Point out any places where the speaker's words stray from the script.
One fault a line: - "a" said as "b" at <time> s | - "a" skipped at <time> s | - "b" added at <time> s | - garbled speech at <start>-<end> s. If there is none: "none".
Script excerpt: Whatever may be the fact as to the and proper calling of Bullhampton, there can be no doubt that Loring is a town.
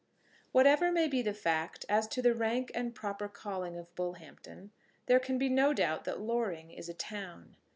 - "rank" added at 2.3 s